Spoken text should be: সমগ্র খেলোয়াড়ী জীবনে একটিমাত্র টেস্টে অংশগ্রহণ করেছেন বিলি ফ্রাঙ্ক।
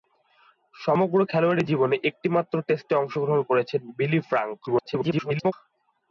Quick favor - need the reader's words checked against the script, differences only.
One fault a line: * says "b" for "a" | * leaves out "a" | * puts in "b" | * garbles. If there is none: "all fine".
* garbles